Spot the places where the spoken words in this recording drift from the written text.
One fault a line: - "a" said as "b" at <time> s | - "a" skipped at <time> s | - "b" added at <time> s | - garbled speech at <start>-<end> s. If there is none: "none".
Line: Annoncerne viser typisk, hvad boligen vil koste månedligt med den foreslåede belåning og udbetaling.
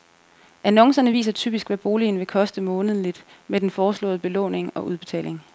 none